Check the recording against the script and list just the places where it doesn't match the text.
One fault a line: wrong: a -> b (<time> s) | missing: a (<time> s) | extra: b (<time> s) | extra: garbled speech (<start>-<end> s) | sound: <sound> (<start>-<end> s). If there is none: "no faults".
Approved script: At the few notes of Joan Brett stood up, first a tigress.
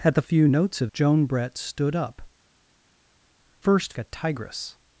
no faults